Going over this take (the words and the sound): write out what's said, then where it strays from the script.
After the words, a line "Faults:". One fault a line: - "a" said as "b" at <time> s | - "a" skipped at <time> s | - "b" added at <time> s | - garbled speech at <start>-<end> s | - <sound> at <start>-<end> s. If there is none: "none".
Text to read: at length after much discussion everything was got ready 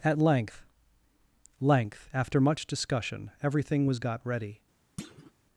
at length length after much discussion everything was got ready
Faults:
- "length" added at 1.6 s
- thud at 5.0-5.3 s